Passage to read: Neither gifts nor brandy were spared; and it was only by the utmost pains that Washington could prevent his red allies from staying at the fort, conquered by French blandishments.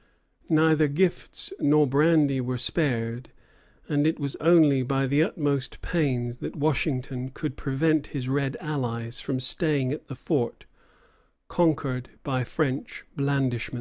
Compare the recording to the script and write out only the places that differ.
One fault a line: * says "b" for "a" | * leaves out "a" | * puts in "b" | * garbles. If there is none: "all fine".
all fine